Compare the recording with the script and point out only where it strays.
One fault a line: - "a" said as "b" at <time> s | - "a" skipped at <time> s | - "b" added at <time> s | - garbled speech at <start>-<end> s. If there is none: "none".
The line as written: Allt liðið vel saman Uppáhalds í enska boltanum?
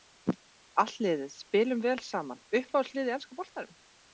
- "spilum" added at 1.4 s
- "lið" added at 3.0 s